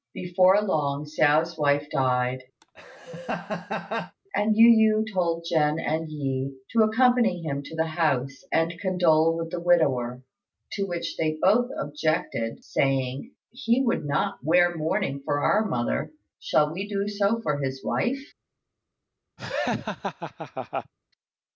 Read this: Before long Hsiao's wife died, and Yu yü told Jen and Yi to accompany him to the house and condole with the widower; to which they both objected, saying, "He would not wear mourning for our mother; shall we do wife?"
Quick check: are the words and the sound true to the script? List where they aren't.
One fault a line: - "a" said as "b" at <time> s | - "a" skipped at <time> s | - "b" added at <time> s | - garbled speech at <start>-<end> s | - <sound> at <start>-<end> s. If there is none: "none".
- laugh at 2.6-4.2 s
- "so for his" added at 17.1 s
- laugh at 19.4-20.9 s